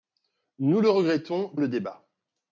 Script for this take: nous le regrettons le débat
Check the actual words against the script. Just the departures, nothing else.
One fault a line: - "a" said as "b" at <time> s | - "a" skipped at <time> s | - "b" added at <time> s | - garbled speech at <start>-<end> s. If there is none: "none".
none